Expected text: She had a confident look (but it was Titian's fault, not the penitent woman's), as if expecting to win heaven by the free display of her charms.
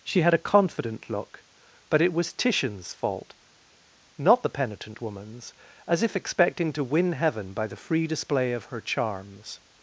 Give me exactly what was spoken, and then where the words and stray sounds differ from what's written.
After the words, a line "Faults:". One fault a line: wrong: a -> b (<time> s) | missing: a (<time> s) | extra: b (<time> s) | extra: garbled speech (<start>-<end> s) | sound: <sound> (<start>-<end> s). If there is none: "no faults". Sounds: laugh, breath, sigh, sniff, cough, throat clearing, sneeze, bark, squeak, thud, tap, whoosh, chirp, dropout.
She had a confident look (but it was Titian's fault, not the penitent woman's), as if expecting to win heaven by the free display of her charms.
Faults:
no faults